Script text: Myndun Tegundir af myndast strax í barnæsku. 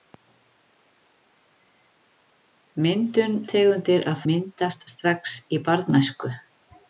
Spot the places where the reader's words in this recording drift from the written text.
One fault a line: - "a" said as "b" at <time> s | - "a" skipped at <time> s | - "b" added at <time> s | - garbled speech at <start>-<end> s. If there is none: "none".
none